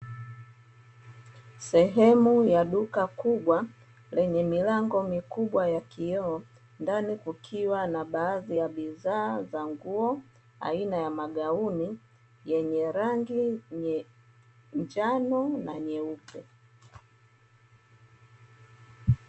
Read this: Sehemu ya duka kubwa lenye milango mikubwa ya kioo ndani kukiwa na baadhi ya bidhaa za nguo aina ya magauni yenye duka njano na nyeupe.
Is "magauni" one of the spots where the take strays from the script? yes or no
no